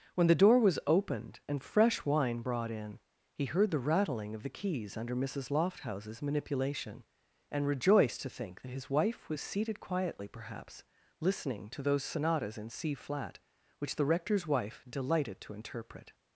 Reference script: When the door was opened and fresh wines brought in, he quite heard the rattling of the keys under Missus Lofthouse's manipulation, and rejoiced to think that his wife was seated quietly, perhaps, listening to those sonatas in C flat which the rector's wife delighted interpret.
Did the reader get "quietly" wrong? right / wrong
right